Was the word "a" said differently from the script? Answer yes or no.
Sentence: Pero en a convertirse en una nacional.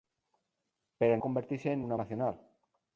no